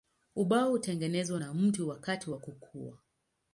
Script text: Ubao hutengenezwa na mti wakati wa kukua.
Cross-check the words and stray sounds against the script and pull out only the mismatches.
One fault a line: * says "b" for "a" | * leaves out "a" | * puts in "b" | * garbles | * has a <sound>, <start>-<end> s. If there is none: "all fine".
all fine